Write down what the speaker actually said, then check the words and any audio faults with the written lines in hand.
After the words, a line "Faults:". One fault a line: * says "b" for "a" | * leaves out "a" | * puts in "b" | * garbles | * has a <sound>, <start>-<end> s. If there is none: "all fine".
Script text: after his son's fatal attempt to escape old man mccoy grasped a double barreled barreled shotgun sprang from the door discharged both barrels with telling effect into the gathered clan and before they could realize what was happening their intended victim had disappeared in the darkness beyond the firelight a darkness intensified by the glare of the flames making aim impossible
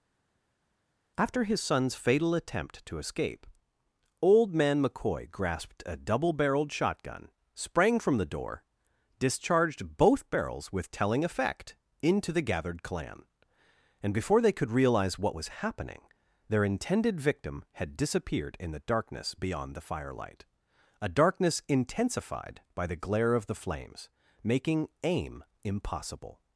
after his son's fatal attempt to escape old man mccoy grasped a double barreled shotgun sprang from the door discharged both barrels with telling effect into the gathered clan and before they could realize what was happening their intended victim had disappeared in the darkness beyond the firelight a darkness intensified by the glare of the flames making aim impossible
Faults:
* leaves out "barreled"